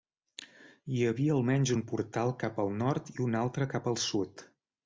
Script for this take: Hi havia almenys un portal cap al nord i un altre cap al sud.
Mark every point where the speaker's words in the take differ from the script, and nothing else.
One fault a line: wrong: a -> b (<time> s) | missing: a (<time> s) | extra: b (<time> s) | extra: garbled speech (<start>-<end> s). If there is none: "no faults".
no faults